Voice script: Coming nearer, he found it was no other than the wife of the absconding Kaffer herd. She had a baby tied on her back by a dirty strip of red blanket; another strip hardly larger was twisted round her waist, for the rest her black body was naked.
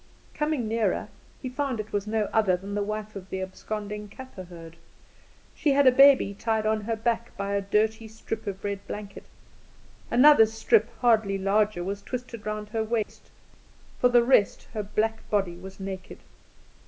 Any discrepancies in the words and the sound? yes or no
yes